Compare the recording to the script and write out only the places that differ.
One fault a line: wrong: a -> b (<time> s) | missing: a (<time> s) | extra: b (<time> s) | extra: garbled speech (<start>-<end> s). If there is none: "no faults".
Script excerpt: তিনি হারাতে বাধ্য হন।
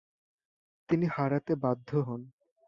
no faults